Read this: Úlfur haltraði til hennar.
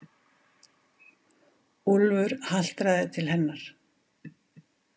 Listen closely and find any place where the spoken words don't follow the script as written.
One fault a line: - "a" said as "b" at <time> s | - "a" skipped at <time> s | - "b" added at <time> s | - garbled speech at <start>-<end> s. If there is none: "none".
none